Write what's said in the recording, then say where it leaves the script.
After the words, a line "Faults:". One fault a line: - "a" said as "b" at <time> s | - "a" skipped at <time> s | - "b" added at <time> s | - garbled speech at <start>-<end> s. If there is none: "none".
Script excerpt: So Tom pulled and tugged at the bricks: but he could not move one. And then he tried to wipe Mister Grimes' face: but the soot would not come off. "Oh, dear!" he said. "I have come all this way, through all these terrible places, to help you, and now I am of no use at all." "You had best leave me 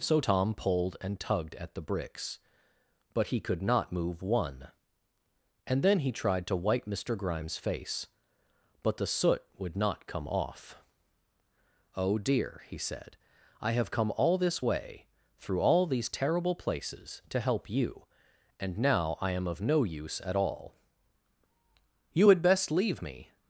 So Tom pulled and tugged at the bricks: but he could not move one. And then he tried to wipe Mister Grimes' face: but the soot would not come off. "Oh, dear!" he said. "I have come all this way, through all these terrible places, to help you, and now I am of no use at all." "You had best leave me
Faults:
none